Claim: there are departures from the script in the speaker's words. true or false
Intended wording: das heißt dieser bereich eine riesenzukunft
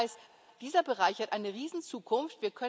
true